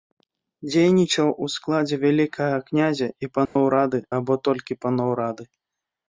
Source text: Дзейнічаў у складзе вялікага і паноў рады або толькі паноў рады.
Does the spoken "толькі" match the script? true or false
true